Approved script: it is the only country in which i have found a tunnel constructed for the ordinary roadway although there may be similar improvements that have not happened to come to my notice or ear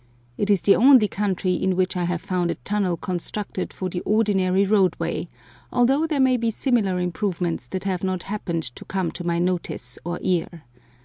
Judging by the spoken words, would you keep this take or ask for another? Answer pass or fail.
pass